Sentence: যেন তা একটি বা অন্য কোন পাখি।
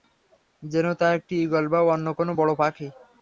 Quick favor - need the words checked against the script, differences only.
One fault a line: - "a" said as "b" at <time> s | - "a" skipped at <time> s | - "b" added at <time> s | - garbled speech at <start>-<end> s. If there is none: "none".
- "ঈগল" added at 1.4 s
- "বড়" added at 2.4 s